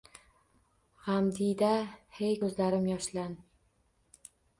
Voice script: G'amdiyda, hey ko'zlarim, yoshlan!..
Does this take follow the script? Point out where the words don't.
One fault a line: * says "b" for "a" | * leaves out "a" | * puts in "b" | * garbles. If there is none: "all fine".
all fine